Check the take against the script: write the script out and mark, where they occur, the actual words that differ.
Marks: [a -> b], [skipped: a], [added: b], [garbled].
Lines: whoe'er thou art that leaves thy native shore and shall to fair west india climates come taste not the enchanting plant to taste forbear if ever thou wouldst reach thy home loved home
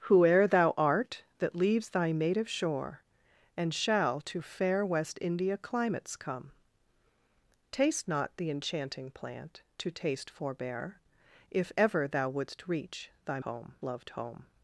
whoe'er thou art that leaves thy native shore and shall to fair west india climates come taste not the enchanting plant to taste forbear if ever thou wouldst reach thy home loved home